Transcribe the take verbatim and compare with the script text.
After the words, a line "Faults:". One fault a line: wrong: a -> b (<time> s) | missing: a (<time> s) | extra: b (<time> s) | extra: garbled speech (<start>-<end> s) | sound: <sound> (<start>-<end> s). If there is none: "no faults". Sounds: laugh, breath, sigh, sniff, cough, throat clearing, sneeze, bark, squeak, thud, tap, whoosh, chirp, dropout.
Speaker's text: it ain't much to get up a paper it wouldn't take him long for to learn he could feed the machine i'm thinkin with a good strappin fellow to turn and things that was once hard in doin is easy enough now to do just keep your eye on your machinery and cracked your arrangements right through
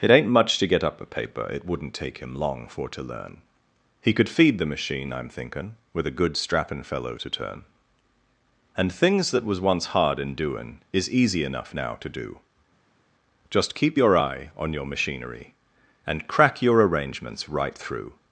it ain't much to get up a paper it wouldn't take him long for to learn he could feed the machine i'm thinkin with a good strappin fellow to turn and things that was once hard in doin is easy enough now to do just keep your eye on your machinery and crack your arrangements right through
Faults:
wrong: cracked -> crack (16.3 s)